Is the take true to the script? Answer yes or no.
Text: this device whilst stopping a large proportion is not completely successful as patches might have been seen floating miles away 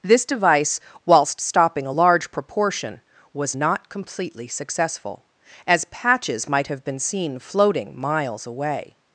no